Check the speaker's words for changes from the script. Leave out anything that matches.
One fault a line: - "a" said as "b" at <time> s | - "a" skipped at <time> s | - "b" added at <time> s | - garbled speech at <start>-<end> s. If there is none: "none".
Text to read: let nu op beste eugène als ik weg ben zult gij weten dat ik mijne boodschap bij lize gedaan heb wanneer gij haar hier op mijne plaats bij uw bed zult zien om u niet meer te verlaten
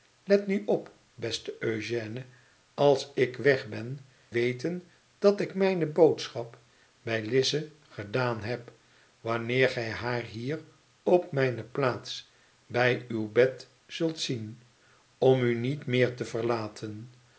- "zult gij" skipped at 4.0 s